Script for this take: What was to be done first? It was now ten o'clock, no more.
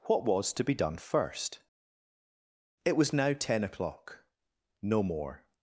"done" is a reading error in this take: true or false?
false